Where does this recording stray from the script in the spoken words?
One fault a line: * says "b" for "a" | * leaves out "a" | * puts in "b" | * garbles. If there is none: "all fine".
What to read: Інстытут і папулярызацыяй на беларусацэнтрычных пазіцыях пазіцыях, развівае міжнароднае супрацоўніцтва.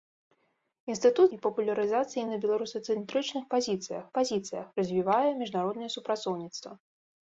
all fine